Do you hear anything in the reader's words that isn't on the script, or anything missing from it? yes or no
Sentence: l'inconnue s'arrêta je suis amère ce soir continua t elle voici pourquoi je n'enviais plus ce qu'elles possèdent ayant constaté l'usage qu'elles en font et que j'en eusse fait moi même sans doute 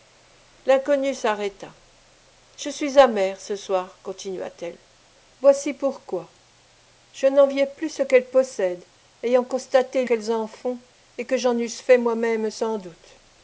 yes